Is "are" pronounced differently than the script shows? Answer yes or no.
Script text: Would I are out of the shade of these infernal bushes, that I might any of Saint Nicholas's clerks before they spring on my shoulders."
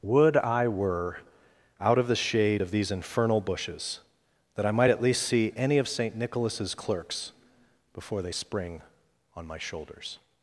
yes